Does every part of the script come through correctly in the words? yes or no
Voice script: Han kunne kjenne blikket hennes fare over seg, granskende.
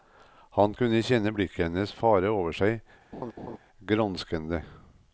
yes